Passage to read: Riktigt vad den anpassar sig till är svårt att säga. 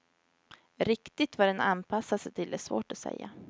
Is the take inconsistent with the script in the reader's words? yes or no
no